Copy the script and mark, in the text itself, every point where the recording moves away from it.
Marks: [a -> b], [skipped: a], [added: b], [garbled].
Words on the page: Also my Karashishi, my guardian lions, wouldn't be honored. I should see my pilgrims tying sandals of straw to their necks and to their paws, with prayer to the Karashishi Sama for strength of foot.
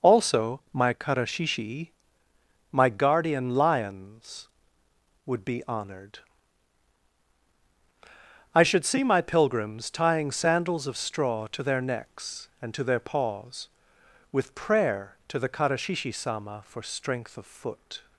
Also my Karashishi, my guardian lions, [wouldn't -> would] be honored. I should see my pilgrims tying sandals of straw to their necks and to their paws, with prayer to the Karashishi Sama for strength of foot.